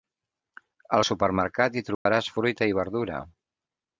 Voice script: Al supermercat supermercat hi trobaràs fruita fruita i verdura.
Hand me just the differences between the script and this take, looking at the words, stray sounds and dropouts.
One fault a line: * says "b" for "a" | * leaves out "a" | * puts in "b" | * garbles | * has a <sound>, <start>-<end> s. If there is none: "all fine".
* leaves out "supermercat"
* has a dropout, 1.9-2.1 s
* leaves out "fruita"